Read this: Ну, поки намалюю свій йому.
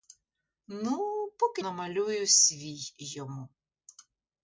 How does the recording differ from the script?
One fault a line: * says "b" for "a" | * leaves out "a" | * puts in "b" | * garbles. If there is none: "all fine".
all fine